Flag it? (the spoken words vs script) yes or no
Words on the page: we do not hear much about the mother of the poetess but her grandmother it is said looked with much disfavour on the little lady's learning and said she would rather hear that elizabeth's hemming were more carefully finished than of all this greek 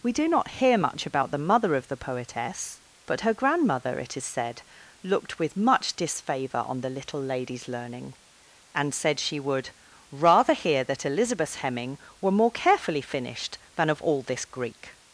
no